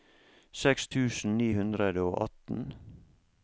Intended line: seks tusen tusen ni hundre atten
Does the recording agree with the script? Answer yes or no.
no